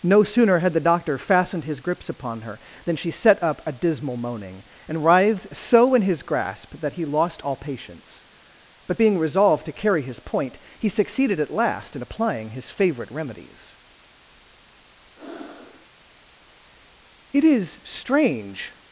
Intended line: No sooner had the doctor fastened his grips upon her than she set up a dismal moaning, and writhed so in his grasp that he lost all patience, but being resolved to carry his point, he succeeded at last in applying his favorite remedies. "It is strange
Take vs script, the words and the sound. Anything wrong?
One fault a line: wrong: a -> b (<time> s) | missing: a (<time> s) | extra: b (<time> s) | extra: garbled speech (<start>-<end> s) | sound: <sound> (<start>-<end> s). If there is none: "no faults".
sound: breath (15.2-15.9 s)